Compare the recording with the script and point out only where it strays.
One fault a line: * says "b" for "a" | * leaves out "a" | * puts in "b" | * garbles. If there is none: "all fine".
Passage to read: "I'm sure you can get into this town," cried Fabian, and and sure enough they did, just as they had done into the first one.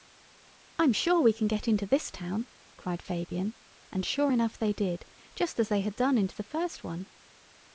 * says "we" for "you"
* leaves out "and"